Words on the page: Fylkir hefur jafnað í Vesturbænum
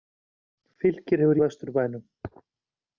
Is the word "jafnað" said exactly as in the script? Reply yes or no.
no